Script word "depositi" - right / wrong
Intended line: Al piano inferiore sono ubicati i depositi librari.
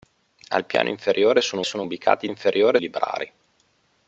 wrong